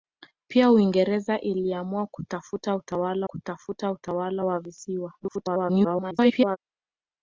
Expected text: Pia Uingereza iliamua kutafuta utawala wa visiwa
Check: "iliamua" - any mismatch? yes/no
no